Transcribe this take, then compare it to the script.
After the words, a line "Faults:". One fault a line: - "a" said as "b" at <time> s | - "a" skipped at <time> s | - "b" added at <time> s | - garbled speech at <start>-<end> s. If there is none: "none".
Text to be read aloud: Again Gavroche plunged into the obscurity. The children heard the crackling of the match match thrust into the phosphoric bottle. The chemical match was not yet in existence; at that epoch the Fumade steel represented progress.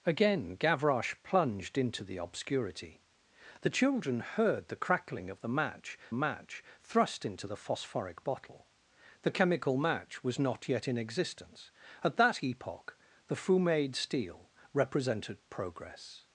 Again Gavroche plunged into the obscurity. The children heard the crackling of the match match thrust into the phosphoric bottle. The chemical match was not yet in existence; at that epoch the Fumade steel represented progress.
Faults:
none